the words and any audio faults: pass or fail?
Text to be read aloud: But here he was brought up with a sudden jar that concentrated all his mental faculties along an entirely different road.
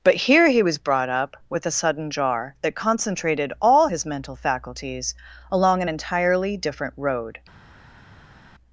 pass